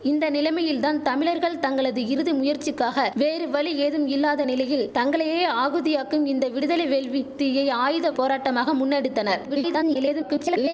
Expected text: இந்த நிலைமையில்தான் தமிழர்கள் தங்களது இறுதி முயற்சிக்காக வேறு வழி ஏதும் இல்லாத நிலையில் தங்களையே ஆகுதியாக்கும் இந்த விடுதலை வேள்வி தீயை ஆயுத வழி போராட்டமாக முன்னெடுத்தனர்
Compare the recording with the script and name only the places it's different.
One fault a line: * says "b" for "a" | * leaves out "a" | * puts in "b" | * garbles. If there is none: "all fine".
* leaves out "வழி"
* garbles